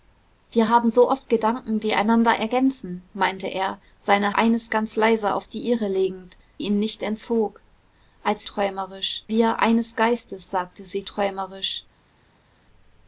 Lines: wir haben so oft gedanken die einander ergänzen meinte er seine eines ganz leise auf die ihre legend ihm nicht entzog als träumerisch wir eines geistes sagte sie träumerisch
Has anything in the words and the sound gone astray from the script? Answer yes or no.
no